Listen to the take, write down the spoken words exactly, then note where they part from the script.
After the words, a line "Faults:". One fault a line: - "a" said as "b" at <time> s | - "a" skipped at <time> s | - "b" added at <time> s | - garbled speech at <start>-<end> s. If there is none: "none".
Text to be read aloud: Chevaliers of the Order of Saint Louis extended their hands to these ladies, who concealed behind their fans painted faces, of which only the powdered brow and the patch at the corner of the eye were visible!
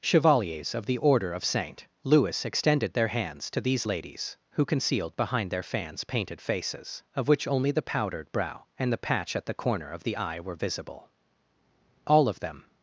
Chevaliers of the Order of Saint Louis extended their hands to these ladies, who concealed behind their fans painted faces, of which only the powdered brow and the patch at the corner of the eye were visible! All of them
Faults:
- "All of them" added at 12.1 s